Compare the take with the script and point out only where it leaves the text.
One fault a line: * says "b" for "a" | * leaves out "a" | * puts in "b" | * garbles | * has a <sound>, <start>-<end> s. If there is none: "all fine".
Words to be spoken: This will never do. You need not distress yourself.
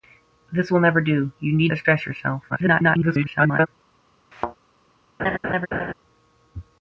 * leaves out "not"
* garbles
* has a thud, 4.3-4.6 s
* has a laugh, 5.2-5.9 s